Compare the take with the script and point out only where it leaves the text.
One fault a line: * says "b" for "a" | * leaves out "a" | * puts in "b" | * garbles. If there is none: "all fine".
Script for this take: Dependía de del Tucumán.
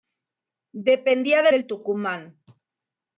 all fine